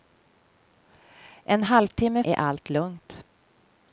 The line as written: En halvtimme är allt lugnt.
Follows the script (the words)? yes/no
yes